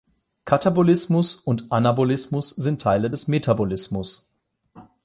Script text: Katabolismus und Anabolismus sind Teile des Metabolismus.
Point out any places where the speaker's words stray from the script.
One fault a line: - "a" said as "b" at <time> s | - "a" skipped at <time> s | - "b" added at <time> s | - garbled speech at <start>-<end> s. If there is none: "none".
none